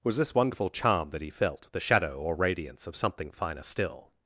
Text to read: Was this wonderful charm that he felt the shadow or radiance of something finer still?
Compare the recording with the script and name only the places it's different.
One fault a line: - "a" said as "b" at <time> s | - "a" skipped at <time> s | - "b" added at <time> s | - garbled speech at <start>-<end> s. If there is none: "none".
none